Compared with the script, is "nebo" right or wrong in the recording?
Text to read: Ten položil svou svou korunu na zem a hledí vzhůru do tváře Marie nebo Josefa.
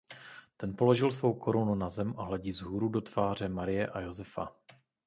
wrong